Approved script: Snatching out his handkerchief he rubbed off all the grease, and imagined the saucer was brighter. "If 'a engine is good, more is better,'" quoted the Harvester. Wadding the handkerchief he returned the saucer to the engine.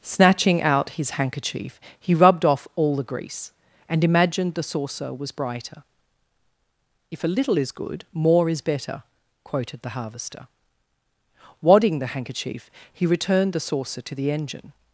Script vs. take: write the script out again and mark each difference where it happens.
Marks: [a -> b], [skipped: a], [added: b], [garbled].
Snatching out his handkerchief he rubbed off all the grease, and imagined the saucer was brighter. "If 'a [engine -> little] is good, more is better,'" quoted the Harvester. Wadding the handkerchief he returned the saucer to the engine.